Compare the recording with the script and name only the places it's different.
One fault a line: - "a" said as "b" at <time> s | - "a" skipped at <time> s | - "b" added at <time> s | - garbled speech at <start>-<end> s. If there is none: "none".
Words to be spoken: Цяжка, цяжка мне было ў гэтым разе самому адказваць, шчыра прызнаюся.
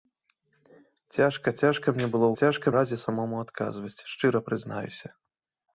- "гэтым" said as "цяжка" at 2.4 s